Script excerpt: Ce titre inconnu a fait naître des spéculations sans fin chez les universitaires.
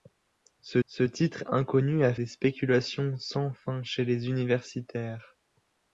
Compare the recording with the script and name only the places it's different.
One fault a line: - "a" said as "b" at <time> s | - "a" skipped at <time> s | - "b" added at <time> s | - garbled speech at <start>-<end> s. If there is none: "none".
- "ce" added at 0.9 s
- "fait naître" skipped at 2.1 s